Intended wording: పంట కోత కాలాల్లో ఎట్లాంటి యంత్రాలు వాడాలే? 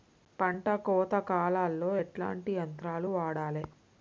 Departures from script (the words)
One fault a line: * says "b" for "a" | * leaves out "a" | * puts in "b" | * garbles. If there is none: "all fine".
all fine